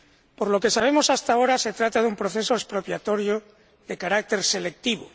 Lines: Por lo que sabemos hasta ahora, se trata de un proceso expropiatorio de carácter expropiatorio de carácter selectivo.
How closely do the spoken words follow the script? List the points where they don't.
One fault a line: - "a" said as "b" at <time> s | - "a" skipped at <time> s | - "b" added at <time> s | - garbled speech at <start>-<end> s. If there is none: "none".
- "expropiatorio de carácter" skipped at 4.4 s